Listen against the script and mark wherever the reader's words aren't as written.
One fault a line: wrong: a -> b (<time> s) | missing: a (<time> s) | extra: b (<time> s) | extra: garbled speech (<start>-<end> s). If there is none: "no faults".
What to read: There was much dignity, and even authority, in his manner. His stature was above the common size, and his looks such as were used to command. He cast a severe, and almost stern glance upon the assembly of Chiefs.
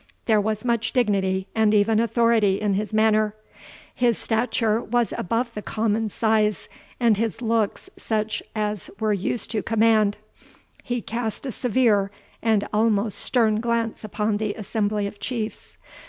no faults